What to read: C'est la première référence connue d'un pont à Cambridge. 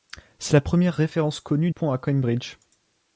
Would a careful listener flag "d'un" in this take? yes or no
yes